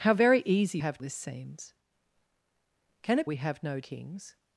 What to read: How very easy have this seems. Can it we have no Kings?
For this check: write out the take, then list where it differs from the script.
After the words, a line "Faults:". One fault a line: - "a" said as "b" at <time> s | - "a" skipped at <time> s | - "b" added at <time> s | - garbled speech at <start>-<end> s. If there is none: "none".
How very easy have this seems. Can it we have no Kings?
Faults:
none